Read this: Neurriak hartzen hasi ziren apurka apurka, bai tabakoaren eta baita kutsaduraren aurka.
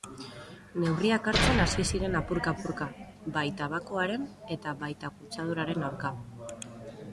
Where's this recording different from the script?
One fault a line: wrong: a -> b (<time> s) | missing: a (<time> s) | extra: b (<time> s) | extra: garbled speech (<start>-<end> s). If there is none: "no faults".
no faults